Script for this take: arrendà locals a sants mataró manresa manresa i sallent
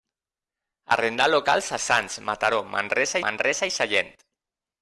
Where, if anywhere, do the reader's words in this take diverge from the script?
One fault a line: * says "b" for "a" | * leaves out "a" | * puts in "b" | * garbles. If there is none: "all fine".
all fine